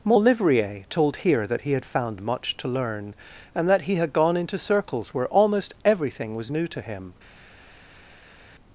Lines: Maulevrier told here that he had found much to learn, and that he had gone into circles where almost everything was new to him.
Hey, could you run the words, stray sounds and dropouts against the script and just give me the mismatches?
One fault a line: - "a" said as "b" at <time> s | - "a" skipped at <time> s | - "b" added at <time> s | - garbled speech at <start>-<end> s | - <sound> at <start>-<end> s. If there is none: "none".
none